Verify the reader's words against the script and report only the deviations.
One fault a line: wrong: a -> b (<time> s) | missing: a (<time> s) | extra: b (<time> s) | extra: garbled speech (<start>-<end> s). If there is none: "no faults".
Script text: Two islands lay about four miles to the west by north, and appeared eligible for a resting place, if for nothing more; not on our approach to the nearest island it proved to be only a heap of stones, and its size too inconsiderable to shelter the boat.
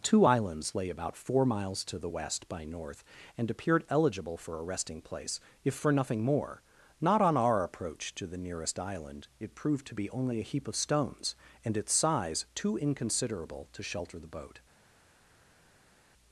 no faults